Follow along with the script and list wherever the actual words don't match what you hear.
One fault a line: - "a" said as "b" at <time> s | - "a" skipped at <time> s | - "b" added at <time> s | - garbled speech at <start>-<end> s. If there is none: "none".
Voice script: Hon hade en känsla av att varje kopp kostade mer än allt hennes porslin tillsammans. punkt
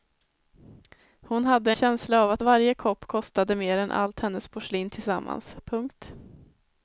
- "en" skipped at 1.7 s